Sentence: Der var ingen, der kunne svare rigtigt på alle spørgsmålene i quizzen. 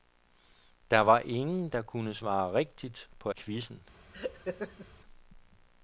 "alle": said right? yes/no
no